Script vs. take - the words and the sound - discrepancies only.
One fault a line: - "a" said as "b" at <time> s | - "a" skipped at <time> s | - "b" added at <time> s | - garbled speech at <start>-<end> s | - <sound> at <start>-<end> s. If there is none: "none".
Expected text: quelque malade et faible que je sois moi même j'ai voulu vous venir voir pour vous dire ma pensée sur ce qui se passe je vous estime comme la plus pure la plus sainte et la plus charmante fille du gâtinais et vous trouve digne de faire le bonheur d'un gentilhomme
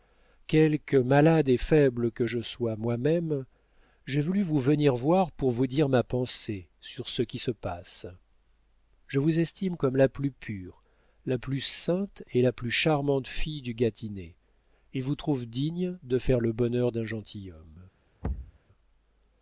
- thud at 18.2-18.6 s